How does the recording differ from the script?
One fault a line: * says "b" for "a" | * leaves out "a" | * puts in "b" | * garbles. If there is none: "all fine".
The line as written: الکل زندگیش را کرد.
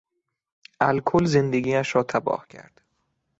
* puts in "تباه"